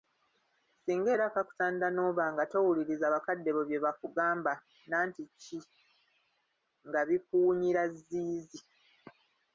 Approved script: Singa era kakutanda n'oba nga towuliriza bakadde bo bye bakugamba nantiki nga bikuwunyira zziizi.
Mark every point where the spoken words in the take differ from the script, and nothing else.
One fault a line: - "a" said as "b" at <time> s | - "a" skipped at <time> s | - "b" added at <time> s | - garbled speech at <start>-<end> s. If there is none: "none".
none